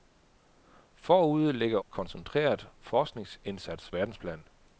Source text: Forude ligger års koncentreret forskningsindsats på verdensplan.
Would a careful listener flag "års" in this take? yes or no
yes